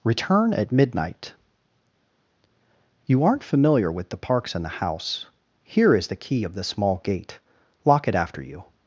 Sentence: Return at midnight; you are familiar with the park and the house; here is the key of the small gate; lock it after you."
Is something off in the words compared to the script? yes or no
yes